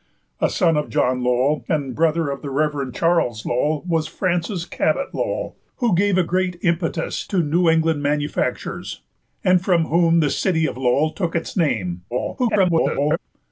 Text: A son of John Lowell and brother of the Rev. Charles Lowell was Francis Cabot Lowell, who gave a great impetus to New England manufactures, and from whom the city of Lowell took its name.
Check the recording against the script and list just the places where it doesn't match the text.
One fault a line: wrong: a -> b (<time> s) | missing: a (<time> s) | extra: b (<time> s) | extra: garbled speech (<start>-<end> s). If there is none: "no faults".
extra: garbled speech (12.1-13.2 s)